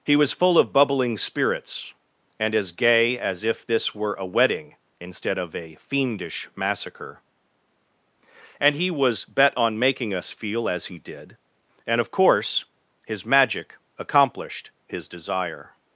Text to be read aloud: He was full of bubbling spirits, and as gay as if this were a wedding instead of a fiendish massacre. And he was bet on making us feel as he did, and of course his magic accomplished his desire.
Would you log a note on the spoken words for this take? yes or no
no